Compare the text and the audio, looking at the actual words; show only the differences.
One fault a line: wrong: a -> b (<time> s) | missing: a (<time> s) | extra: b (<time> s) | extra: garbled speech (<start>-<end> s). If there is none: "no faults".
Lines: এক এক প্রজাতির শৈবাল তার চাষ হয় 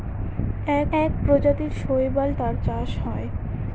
no faults